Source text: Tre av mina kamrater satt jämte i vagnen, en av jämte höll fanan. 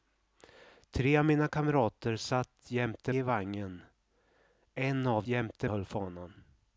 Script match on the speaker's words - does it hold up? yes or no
yes